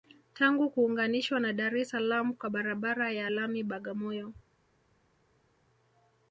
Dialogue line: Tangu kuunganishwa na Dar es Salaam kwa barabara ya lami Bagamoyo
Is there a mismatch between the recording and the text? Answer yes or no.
no